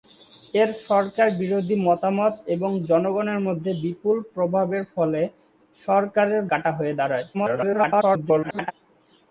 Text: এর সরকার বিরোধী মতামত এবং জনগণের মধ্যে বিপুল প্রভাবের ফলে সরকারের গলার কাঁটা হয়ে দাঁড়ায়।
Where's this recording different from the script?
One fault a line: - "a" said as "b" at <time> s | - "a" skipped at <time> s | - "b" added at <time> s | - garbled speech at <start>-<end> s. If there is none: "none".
- "গলার" skipped at 6.4 s
- garbled speech at 7.3-8.7 s